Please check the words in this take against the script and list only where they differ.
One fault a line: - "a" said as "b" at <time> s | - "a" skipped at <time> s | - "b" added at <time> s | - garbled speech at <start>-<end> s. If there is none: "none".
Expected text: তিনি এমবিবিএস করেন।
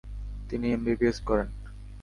none